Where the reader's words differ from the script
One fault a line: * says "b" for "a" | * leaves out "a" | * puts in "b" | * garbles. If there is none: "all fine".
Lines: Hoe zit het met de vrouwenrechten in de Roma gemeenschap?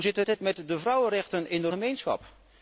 * puts in "zit"
* leaves out "Roma"